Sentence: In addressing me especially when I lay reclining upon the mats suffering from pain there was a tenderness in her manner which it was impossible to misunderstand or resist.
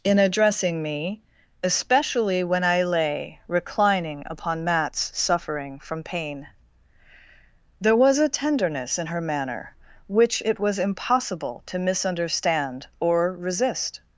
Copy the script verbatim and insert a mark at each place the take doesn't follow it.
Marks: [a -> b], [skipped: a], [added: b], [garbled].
In addressing me especially when I lay reclining upon [skipped: the] mats suffering from pain there was a tenderness in her manner which it was impossible to misunderstand or resist.